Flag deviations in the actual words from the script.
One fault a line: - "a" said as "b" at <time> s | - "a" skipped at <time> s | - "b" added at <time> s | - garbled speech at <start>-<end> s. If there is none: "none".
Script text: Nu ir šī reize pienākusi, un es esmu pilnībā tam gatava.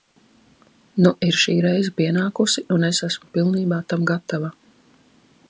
none